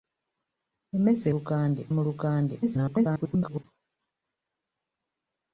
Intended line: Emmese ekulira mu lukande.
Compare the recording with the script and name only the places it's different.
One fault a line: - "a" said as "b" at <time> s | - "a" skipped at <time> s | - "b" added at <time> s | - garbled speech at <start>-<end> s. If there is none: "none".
- "ekulira" said as "lukande" at 1.3 s
- garbled speech at 2.6-3.6 s